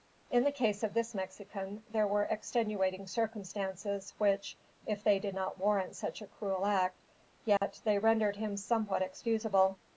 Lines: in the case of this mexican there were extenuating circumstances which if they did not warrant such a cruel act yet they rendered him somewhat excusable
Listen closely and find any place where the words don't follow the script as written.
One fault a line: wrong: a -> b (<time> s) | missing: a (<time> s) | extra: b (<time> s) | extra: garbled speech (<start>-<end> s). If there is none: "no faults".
no faults